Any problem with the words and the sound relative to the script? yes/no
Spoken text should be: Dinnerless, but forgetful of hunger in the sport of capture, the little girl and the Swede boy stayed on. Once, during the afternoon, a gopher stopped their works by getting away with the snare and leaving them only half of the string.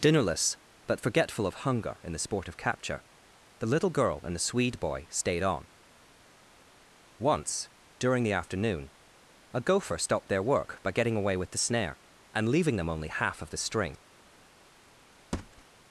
yes